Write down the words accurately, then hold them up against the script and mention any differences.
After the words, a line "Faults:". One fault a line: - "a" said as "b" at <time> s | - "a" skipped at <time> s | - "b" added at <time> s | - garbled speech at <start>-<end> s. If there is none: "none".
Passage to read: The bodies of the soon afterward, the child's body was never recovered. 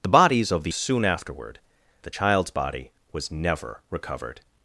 The bodies of the soon afterward, the child's body was never recovered.
Faults:
none